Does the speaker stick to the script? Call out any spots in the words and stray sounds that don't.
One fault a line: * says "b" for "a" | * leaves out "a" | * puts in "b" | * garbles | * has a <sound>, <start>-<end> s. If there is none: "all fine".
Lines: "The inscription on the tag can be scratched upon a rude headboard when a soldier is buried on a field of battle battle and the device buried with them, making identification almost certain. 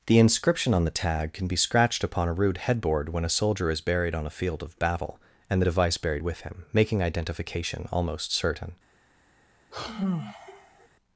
* leaves out "battle"
* says "him" for "them"
* has a sigh, 9.7-10.9 s